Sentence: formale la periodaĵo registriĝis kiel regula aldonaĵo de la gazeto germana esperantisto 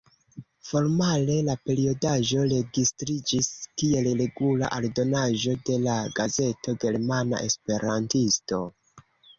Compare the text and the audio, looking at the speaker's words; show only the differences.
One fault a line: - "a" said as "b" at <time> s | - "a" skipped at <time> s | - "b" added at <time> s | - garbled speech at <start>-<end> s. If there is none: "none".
none